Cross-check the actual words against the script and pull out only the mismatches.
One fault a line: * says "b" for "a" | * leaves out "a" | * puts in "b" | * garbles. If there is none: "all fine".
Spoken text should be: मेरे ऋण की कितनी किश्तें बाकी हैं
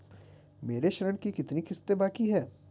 all fine